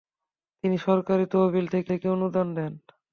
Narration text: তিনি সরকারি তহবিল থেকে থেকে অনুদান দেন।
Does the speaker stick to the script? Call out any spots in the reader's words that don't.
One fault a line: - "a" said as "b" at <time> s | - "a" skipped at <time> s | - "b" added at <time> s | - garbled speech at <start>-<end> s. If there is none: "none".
none